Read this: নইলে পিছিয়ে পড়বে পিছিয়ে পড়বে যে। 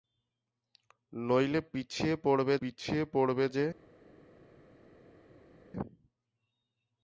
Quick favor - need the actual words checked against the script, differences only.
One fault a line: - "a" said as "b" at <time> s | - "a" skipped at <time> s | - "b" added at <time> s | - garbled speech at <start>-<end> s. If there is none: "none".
none